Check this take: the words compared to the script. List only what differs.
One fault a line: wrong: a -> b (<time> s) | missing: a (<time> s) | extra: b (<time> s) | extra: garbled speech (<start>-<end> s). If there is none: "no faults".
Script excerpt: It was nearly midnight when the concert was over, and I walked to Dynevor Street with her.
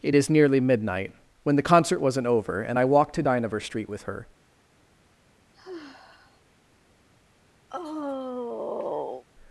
wrong: was -> is (0.1 s)
wrong: was -> wasn't (2.0 s)